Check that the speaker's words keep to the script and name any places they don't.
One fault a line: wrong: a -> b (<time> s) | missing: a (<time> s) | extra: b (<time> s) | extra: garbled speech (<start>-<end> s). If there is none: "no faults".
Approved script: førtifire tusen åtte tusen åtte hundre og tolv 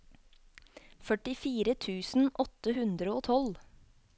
missing: tusen åtte (2.8 s)